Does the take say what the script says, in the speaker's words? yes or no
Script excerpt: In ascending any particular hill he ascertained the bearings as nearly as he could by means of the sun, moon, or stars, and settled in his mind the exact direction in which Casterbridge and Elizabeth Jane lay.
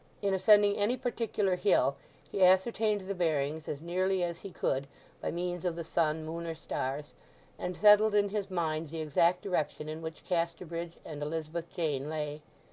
yes